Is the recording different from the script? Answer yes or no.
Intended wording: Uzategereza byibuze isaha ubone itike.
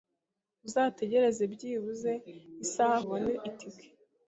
no